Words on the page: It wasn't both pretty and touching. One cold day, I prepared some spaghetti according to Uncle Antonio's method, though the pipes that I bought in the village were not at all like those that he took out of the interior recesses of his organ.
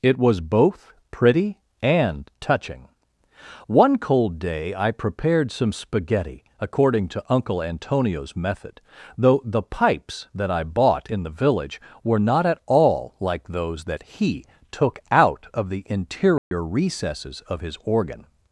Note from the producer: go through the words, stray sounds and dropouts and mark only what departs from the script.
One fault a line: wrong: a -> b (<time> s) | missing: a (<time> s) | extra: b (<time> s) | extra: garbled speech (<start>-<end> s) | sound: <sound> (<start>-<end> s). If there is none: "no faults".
wrong: wasn't -> was (0.2 s)
sound: dropout (16.4-16.5 s)